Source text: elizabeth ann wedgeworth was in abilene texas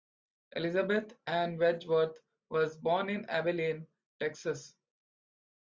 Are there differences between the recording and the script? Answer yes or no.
yes